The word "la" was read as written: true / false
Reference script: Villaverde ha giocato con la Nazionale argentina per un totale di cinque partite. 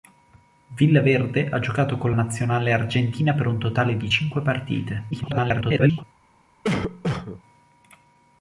false